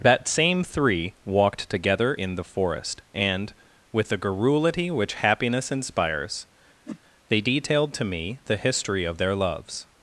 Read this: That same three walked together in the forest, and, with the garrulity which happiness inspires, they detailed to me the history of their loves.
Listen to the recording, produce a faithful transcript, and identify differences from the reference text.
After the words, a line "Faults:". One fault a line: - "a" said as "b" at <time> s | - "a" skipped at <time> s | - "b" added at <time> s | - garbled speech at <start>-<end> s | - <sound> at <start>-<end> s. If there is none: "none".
That same three walked together in the forest, and, with the garrulity which happiness inspires, they detailed to me the history of their loves.
Faults:
- whoosh at 6.8-7.0 s